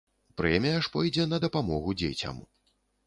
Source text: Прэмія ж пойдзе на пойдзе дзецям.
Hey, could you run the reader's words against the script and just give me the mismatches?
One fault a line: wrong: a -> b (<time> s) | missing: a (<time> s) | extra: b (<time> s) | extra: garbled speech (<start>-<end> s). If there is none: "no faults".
wrong: пойдзе -> дапамогу (1.4 s)